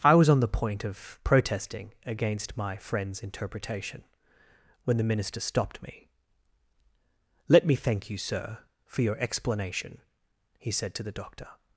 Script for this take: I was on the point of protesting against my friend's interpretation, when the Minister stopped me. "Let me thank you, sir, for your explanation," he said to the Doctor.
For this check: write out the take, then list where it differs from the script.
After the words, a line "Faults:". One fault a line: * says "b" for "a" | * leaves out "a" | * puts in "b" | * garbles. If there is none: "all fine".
I was on the point of protesting against my friend's interpretation, when the Minister stopped me. "Let me thank you, sir, for your explanation," he said to the Doctor.
Faults:
all fine